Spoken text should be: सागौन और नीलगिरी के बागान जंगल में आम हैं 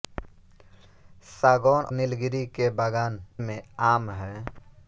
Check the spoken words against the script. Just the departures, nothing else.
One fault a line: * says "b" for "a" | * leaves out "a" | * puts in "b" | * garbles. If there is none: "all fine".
* leaves out "और"
* leaves out "जंगल"